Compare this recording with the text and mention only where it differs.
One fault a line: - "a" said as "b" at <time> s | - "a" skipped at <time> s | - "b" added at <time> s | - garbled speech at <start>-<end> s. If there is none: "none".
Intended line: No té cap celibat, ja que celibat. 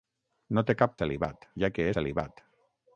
none